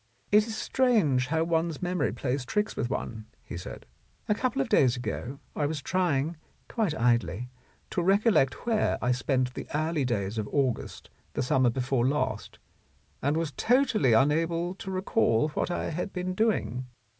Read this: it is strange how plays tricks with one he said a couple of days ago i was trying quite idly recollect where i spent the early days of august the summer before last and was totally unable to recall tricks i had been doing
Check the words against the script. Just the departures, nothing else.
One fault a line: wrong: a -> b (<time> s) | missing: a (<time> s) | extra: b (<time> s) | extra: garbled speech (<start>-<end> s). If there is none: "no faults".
extra: one's memory (1.4 s)
extra: to (7.9 s)
wrong: tricks -> what (15.5 s)